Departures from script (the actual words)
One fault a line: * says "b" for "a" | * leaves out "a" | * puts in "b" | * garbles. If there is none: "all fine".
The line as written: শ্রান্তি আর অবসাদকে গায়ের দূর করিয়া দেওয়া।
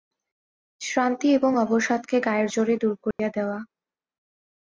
* says "এবং" for "আর"
* puts in "জোরে"